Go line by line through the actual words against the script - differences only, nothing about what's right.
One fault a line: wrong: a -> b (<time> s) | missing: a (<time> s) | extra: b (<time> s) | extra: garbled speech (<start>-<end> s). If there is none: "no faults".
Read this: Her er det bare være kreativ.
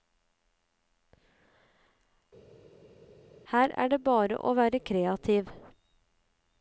extra: å (4.4 s)